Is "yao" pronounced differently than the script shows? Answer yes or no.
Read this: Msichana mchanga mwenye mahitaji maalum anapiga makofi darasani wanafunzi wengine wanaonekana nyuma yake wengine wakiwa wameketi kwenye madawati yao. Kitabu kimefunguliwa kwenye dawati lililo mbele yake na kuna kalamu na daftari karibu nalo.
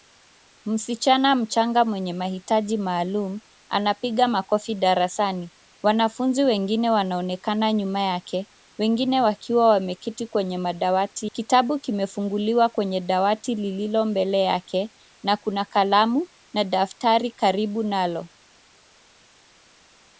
yes